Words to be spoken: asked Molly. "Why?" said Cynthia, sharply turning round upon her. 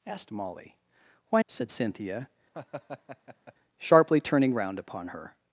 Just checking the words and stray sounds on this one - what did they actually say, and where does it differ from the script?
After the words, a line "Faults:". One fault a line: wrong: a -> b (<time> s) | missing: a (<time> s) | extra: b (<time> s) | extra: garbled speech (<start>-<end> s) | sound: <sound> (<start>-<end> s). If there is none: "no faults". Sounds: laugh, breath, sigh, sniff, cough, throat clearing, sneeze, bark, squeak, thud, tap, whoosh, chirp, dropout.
asked Molly. "Why?" said Cynthia, sharply turning round upon her.
Faults:
sound: laugh (2.5-3.5 s)